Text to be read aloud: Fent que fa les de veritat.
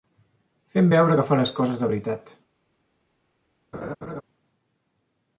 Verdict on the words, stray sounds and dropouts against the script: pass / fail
fail